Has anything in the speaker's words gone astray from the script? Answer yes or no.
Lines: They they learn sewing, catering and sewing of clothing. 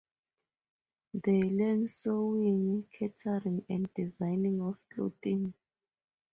yes